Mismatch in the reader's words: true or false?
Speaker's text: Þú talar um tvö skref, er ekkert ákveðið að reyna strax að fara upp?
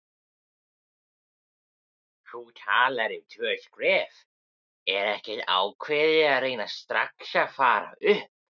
false